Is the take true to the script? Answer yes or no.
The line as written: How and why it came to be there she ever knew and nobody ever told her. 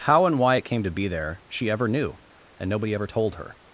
yes